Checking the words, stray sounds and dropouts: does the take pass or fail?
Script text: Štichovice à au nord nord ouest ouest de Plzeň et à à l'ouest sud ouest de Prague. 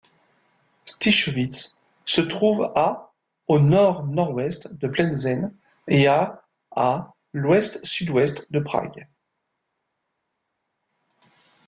fail